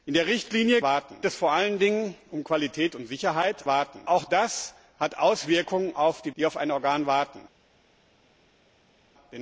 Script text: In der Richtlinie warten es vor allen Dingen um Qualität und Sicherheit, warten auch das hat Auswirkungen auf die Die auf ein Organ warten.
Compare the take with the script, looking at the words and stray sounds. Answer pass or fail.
pass